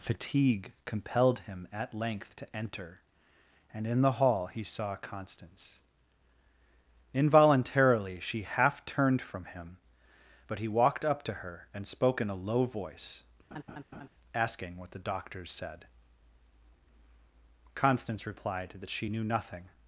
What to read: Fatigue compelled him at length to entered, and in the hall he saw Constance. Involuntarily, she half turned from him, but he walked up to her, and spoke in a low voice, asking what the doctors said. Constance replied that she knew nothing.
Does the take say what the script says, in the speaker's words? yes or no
no